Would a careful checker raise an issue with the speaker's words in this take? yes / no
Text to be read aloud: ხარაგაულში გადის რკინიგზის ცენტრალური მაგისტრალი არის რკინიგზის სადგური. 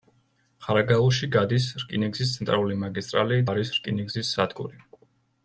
no